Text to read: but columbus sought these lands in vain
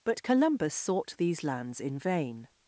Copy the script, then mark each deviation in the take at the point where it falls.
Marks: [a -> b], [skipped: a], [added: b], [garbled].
but columbus sought these lands in vain